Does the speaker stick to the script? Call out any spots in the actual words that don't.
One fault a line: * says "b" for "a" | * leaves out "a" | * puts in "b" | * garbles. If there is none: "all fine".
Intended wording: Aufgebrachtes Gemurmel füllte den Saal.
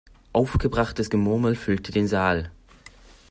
all fine